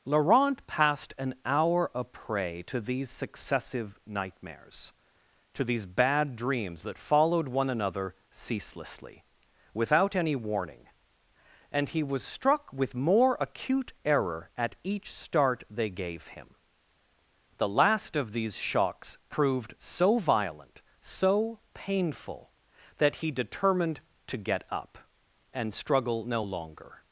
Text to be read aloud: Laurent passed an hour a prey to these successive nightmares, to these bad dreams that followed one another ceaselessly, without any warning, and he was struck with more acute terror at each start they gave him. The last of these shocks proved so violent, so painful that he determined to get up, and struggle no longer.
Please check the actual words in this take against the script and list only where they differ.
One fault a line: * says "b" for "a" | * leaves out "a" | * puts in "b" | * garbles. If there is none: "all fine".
* says "error" for "terror"